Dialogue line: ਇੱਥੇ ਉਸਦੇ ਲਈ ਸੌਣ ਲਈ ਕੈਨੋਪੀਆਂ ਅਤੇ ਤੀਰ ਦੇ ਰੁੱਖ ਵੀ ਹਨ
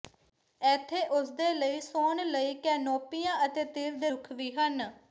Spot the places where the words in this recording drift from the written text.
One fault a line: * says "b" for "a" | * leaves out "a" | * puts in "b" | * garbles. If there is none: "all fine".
all fine